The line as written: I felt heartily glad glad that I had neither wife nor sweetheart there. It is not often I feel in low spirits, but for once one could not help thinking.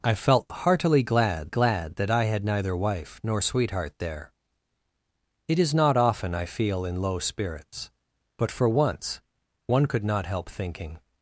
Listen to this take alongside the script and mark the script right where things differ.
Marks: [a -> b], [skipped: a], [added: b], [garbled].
I felt heartily glad glad that I had neither wife nor sweetheart there. It is not often I feel in low spirits, but for once one could not help thinking.